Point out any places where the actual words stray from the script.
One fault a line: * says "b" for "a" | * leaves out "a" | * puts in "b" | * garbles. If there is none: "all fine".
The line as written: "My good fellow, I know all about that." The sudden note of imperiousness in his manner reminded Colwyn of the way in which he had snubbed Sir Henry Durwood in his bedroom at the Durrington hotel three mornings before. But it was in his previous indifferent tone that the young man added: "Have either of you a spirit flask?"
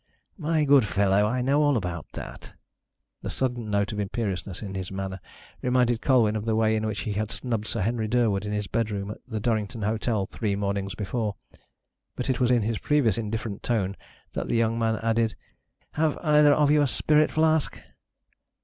all fine